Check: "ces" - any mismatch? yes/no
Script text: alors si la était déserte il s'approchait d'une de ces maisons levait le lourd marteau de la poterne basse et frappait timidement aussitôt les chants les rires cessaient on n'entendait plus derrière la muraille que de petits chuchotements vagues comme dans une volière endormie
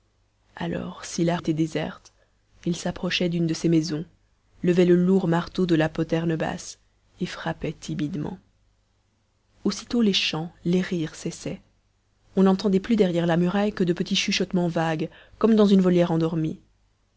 no